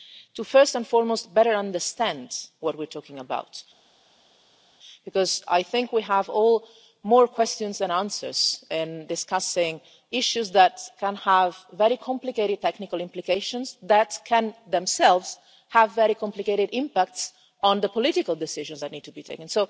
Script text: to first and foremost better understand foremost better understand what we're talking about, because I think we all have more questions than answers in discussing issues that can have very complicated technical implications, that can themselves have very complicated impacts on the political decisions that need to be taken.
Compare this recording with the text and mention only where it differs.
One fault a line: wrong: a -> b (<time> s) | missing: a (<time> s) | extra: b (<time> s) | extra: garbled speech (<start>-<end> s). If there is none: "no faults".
missing: foremost better understand (2.3 s)